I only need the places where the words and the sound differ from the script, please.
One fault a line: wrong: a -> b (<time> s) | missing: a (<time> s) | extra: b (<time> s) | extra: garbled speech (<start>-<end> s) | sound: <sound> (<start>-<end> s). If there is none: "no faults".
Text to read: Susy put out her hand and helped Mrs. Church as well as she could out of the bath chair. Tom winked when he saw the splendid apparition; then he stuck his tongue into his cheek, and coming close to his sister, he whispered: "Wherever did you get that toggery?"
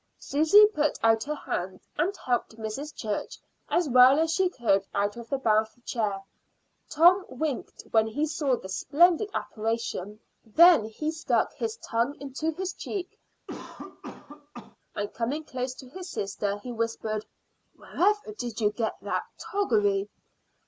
sound: cough (13.5-14.8 s)